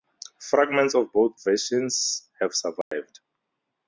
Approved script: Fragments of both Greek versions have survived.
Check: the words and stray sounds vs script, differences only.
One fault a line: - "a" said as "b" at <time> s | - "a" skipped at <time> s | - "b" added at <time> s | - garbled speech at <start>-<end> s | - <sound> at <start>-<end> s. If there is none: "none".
- "Greek" skipped at 1.4 s
- dropout at 2.8-2.9 s